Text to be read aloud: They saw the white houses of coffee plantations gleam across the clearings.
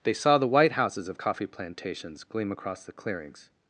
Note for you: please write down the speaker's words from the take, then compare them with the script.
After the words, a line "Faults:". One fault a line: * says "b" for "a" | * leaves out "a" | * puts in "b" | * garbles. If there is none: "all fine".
They saw the white houses of coffee plantations gleam across the clearings.
Faults:
all fine